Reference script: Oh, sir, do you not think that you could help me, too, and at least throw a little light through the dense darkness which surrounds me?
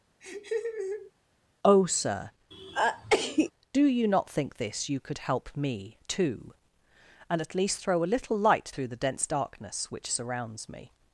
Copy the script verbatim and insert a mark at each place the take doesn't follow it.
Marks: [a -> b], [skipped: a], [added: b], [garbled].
Oh, sir, do you not think [that -> this] you could help me, too, and at least throw a little light through the dense darkness which surrounds me?